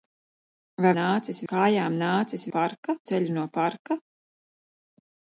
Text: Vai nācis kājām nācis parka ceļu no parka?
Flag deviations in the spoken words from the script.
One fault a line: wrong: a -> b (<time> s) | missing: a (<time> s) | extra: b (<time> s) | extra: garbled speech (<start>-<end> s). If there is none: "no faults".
no faults